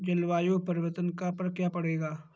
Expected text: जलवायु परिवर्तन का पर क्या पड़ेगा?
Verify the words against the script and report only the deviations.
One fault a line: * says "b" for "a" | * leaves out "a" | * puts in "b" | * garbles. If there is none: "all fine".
all fine